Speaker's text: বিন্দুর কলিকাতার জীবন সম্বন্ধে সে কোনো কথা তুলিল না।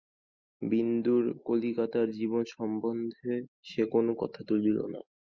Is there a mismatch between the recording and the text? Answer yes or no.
no